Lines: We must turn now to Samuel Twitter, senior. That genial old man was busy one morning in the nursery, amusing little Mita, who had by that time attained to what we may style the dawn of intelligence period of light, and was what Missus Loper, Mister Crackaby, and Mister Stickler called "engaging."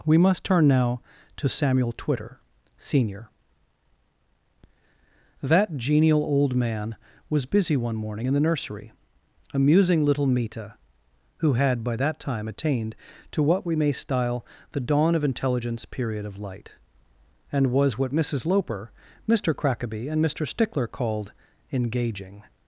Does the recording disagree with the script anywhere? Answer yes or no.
no